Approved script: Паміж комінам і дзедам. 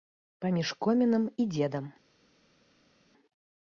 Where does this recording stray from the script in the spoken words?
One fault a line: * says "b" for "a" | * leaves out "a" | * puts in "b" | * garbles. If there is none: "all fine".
all fine